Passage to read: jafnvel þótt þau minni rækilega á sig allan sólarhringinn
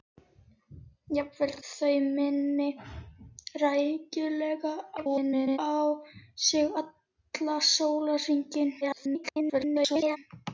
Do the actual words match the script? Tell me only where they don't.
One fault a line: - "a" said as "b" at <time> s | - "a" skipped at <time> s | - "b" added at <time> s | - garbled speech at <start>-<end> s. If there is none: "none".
- "þótt" skipped at 1.5 s
- garbled speech at 5.0-5.6 s
- garbled speech at 8.8-10.2 s